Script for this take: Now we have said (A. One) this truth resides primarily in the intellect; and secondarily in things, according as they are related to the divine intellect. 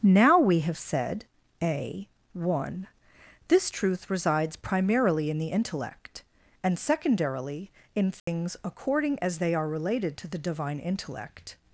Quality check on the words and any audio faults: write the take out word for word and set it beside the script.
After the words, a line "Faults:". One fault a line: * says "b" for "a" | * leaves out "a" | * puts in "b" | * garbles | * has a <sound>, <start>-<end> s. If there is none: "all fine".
Now we have said (A. One) this truth resides primarily in the intellect; and secondarily in things, according as they are related to the divine intellect.
Faults:
* has a dropout, 8.2-8.3 s